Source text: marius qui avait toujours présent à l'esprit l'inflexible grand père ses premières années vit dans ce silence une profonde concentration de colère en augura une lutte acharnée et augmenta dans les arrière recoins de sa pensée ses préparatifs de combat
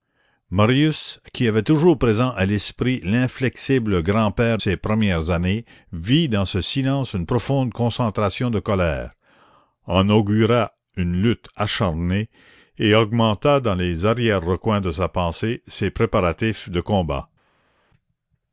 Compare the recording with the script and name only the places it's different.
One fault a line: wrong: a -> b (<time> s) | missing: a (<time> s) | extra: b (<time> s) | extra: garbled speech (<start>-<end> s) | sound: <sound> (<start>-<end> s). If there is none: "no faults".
no faults